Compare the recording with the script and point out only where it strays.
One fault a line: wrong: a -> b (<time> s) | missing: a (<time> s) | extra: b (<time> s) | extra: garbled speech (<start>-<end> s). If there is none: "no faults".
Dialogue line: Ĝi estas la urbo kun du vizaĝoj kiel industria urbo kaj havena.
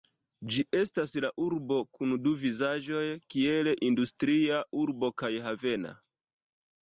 no faults